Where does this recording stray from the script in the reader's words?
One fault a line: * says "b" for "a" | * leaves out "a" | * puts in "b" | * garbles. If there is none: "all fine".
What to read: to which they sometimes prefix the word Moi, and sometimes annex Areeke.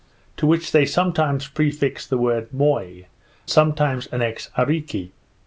* leaves out "and"